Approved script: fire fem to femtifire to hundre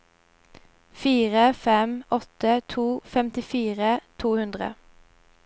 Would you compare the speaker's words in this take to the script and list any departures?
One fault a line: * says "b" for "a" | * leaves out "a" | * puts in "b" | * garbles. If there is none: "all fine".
* puts in "åtte"